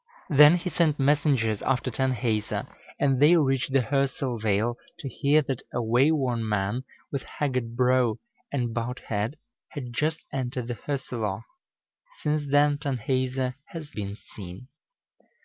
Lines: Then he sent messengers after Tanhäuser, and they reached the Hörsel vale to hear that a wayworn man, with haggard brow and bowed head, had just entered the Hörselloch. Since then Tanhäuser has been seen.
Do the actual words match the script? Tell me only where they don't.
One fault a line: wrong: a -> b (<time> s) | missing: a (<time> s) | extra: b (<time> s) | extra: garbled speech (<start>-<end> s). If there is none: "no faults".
no faults